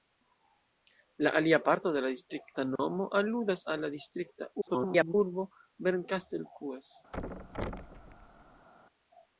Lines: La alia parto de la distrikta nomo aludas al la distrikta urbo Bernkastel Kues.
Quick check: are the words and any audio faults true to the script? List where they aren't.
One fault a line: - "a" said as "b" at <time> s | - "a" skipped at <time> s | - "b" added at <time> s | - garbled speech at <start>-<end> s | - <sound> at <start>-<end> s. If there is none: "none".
- dropout at 2.8-2.8 s
- garbled speech at 4.6-5.1 s
- thud at 7.1-8.7 s